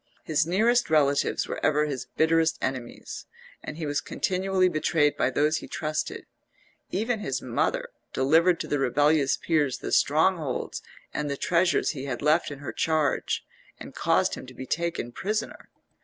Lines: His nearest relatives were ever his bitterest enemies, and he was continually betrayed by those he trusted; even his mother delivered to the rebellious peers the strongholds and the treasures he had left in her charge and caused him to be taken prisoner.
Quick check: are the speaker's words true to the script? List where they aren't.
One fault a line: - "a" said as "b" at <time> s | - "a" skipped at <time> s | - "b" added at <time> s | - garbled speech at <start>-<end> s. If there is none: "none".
none